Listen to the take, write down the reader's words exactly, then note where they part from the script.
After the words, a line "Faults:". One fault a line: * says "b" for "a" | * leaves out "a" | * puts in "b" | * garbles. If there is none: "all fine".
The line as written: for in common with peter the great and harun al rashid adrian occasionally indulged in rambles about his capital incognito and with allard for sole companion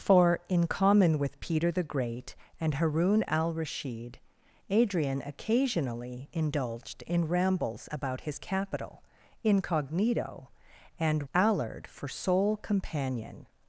for in common with peter the great and harun al rashid adrian occasionally indulged in rambles about his capital incognito and allard for sole companion
Faults:
* leaves out "with"